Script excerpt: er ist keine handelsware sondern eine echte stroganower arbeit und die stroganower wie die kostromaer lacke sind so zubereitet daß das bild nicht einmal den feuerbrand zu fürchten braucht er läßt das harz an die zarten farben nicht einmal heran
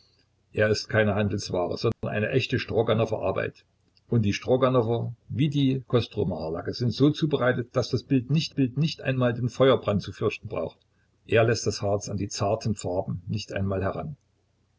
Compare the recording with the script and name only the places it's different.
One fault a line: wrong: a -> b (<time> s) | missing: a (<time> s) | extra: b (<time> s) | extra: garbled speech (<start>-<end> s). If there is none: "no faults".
extra: bild nicht (8.5 s)